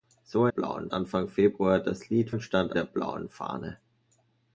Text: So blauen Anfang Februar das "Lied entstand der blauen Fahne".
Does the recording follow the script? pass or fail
pass